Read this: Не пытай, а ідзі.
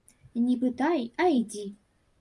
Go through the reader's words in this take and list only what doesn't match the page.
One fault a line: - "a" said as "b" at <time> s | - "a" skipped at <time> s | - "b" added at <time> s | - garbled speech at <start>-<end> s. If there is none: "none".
none